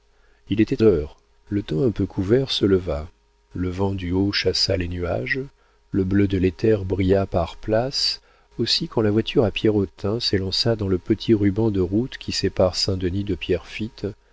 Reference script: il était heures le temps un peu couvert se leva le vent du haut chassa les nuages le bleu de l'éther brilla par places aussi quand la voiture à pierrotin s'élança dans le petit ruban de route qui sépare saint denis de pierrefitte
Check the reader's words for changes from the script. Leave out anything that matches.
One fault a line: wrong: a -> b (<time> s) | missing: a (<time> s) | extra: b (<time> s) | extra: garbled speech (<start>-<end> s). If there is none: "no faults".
no faults